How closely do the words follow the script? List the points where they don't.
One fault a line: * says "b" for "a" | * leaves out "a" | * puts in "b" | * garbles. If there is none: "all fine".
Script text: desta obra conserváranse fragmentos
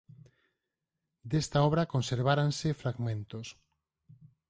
all fine